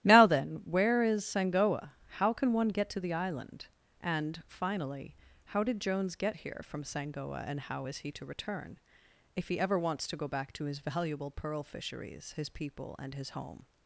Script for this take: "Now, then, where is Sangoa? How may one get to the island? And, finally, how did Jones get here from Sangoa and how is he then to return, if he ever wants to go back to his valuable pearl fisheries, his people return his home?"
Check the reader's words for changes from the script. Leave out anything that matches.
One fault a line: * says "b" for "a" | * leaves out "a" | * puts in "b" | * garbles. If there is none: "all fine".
* says "can" for "may"
* leaves out "then"
* says "and" for "return"